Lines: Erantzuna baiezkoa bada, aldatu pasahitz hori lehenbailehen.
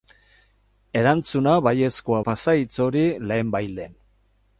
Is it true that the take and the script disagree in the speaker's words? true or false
true